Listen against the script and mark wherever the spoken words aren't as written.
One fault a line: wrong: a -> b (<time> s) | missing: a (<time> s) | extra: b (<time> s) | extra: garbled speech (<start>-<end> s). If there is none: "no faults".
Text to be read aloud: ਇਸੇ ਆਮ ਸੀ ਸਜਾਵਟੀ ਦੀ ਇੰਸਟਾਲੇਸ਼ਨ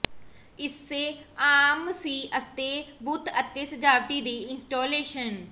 extra: ਅਤੇ ਬੁੱਤ ਅਤੇ (2.4 s)